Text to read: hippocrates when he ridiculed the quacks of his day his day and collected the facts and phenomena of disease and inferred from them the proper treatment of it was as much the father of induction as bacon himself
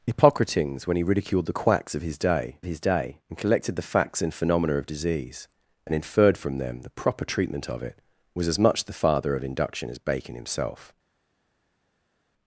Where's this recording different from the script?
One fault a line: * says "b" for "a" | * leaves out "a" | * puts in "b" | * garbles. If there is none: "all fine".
all fine